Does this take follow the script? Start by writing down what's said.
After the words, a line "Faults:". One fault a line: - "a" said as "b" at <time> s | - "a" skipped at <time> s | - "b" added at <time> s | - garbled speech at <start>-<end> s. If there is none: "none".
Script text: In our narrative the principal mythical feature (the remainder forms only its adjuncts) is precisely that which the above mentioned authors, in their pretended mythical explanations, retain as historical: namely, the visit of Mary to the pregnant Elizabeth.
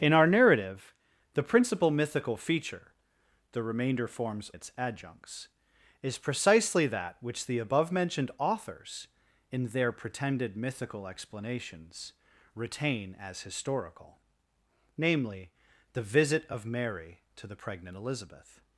In our narrative the principal mythical feature (the remainder forms its adjuncts) is precisely that which the above mentioned authors, in their pretended mythical explanations, retain as historical: namely, the visit of Mary to the pregnant Elizabeth.
Faults:
- "only" skipped at 4.5 s